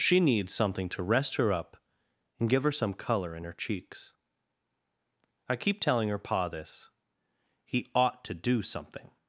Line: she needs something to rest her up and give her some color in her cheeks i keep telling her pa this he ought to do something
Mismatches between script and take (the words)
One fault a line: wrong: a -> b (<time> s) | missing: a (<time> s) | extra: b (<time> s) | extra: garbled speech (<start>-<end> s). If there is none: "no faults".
no faults